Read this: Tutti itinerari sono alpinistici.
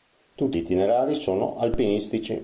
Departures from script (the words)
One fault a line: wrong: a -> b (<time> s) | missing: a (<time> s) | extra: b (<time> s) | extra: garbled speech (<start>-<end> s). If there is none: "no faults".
no faults